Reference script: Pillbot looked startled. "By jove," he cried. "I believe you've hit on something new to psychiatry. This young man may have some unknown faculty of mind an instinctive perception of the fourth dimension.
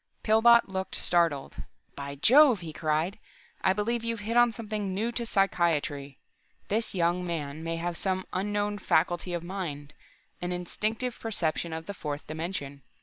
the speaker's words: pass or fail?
pass